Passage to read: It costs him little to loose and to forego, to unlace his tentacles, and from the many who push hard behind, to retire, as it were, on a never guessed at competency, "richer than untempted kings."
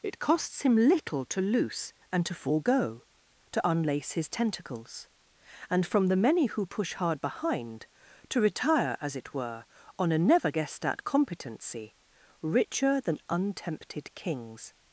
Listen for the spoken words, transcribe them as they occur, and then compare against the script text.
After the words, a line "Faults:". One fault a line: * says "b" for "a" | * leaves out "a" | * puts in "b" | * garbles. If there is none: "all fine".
It costs him little to loose and to forego, to unlace his tentacles, and from the many who push hard behind, to retire, as it were, on a never guessed at competency, "richer than untempted kings."
Faults:
all fine